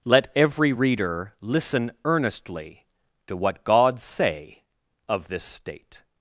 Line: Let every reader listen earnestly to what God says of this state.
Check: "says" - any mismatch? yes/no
yes